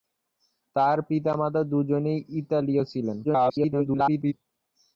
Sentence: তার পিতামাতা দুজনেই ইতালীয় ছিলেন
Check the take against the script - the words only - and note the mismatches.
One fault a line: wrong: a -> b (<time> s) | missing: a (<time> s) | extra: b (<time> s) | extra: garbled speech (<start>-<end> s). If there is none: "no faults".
extra: garbled speech (3.2-4.3 s)